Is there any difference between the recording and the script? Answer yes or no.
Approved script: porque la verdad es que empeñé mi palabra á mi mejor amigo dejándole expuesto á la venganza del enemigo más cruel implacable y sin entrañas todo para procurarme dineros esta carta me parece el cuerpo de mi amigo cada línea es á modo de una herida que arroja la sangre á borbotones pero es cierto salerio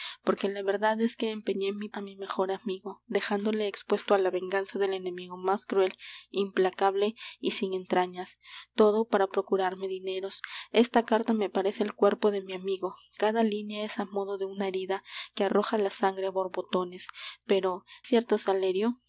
yes